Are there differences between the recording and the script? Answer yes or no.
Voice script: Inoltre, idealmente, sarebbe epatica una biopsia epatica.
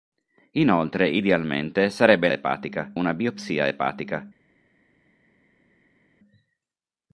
no